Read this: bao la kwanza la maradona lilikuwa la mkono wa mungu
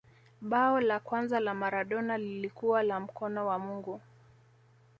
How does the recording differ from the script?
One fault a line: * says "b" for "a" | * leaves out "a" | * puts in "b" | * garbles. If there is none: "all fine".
all fine